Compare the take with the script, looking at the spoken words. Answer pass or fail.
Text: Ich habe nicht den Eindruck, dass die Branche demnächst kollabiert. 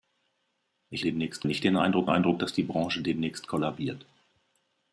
fail